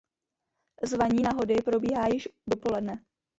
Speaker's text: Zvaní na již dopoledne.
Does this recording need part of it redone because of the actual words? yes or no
yes